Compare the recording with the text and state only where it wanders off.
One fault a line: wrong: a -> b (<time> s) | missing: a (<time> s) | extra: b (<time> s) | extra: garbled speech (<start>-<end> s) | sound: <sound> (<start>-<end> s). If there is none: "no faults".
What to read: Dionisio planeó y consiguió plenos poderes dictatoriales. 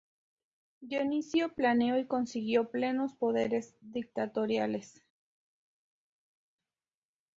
no faults